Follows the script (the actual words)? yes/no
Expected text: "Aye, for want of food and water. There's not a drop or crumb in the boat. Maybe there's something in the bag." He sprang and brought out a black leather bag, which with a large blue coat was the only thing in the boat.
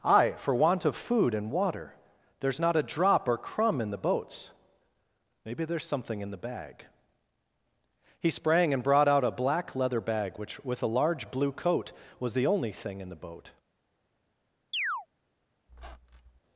no